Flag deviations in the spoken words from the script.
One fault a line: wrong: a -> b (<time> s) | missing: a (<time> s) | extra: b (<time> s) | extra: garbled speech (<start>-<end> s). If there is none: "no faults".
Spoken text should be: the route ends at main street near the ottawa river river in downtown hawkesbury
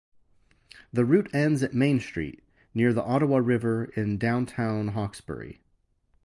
missing: river (3.9 s)